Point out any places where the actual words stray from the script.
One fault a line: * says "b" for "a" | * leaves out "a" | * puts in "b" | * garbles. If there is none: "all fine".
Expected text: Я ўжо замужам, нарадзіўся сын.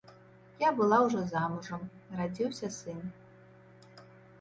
* puts in "была"